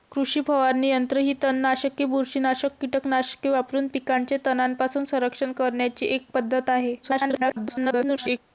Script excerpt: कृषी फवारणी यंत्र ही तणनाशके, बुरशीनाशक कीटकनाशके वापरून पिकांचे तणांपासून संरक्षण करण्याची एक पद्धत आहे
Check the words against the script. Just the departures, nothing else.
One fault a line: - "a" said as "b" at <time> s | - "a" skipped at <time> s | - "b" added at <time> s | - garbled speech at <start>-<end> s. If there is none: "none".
- garbled speech at 7.0-8.4 s